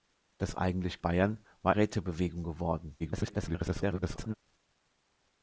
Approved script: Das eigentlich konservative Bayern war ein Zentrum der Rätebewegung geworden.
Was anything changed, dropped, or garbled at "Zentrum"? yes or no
yes